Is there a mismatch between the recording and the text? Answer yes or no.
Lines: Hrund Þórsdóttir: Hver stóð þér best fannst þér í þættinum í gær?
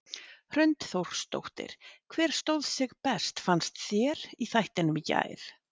yes